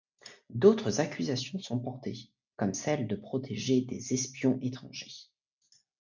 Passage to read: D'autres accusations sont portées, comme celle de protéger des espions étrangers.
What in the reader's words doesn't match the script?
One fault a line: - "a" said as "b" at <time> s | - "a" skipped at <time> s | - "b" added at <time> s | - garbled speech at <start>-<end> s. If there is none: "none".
none